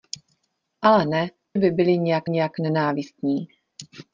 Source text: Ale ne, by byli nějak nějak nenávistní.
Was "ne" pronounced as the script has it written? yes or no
yes